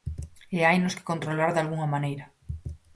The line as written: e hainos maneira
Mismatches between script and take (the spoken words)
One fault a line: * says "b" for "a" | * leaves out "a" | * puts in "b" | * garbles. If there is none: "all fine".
* puts in "que controlar dalgunha"